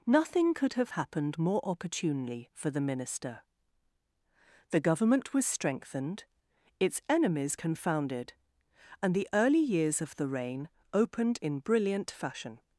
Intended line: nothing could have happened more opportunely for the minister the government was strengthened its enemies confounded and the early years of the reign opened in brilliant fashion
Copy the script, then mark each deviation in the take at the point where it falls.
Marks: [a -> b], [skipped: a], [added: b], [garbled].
nothing could have happened more opportunely for the minister the government was strengthened its enemies confounded and the early years of the reign opened in brilliant fashion